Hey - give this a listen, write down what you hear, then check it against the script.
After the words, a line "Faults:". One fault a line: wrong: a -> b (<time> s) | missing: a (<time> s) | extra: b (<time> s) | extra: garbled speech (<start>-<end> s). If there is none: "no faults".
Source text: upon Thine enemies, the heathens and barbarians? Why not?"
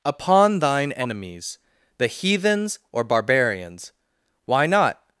upon Thine enemies, the heathens or barbarians? Why not?"
Faults:
wrong: and -> or (2.9 s)